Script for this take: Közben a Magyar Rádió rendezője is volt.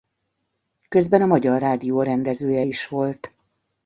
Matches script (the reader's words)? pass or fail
pass